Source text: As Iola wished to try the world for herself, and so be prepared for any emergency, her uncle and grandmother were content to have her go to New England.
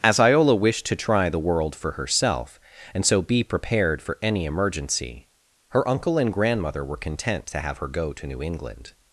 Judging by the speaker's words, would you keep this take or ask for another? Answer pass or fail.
pass